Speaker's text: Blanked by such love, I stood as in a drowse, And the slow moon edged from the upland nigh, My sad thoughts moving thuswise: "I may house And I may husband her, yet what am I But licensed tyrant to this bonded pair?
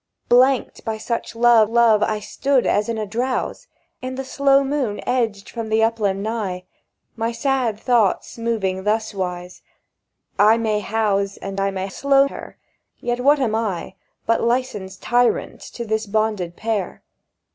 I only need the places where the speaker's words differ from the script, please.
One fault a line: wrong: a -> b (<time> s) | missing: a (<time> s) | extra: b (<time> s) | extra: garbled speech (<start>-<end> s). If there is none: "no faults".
extra: love (1.7 s)
wrong: husband -> slow (11.9 s)